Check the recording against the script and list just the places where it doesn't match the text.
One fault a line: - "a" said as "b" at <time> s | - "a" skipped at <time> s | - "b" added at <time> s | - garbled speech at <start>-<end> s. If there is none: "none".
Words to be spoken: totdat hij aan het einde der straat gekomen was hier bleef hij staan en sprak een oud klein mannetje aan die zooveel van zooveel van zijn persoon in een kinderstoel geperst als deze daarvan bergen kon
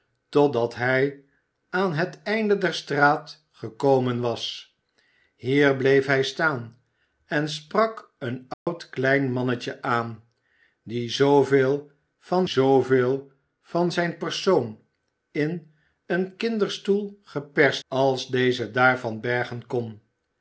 none